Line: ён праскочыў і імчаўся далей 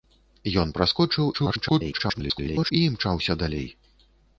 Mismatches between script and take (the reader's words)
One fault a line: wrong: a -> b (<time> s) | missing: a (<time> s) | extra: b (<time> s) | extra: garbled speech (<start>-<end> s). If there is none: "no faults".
extra: garbled speech (1.3-2.7 s)